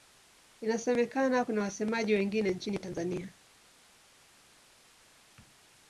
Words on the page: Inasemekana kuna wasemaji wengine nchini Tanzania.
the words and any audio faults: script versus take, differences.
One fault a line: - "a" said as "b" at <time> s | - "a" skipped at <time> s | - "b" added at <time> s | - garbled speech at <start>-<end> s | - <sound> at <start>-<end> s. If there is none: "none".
none